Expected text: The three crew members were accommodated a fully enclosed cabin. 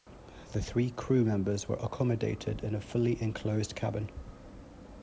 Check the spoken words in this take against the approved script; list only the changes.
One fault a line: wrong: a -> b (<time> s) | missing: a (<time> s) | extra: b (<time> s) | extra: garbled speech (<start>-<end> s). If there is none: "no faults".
extra: in (2.6 s)